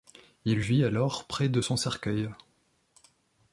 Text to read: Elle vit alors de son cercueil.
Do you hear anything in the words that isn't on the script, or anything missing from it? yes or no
yes